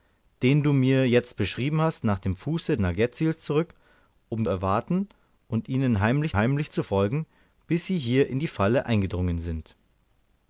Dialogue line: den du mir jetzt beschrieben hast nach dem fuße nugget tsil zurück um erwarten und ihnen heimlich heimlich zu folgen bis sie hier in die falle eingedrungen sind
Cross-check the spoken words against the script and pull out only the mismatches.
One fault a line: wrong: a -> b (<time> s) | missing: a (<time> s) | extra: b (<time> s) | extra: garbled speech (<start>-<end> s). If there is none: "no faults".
no faults